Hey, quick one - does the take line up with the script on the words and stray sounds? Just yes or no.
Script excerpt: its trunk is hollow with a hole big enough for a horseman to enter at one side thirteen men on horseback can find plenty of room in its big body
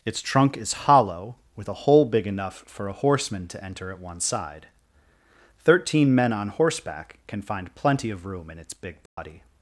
no